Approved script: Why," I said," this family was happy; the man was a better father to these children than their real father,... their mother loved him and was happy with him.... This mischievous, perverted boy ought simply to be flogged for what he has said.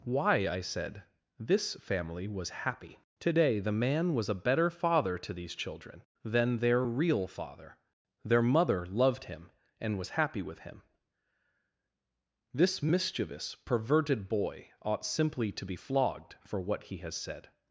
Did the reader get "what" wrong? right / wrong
right